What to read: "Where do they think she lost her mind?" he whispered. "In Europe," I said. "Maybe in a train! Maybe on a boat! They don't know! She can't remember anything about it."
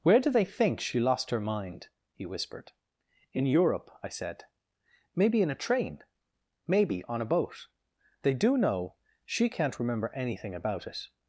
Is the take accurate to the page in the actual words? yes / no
no